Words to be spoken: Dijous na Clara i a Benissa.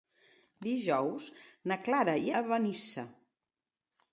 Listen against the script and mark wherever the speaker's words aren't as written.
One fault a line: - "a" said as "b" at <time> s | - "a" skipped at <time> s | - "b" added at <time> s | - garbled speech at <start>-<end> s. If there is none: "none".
none